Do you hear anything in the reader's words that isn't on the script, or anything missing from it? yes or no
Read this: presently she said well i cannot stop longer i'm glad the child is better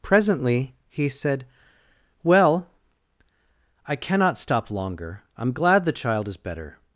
yes